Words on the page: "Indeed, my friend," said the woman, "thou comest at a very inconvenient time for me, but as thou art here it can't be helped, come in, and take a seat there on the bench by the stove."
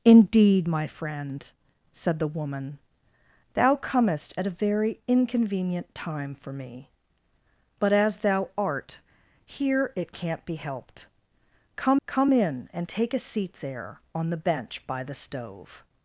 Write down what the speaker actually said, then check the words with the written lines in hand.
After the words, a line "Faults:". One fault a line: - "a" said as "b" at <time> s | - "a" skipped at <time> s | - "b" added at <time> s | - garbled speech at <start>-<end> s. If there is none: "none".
"Indeed, my friend," said the woman, "thou comest at a very inconvenient time for me, but as thou art here it can't be helped, come come in, and take a seat there on the bench by the stove."
Faults:
- "come" added at 12.1 s